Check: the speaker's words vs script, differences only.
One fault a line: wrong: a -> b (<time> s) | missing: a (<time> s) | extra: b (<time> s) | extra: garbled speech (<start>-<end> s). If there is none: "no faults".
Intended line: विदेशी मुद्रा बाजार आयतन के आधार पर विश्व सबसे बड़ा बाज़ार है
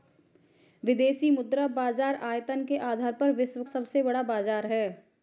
no faults